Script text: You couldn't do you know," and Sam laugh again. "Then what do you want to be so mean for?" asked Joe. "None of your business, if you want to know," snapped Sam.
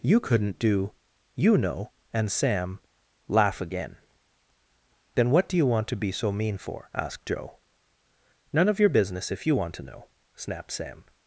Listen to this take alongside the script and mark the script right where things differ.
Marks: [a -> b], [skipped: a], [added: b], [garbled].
You couldn't do you know," and Sam laugh again. "Then what do you want to be so mean for?" asked Joe. "None of your business, if you want to know," snapped Sam.